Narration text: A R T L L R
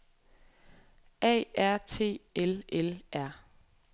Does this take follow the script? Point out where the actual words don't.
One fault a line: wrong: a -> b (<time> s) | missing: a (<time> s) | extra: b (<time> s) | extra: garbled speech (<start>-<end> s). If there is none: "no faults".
no faults